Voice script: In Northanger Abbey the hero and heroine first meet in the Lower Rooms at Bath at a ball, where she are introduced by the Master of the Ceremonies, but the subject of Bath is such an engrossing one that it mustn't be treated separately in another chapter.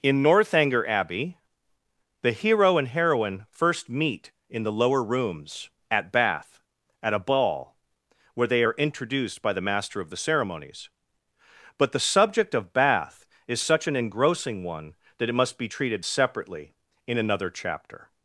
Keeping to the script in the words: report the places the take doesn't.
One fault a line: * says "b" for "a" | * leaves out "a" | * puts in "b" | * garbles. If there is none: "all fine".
* says "they" for "she"
* says "must" for "mustn't"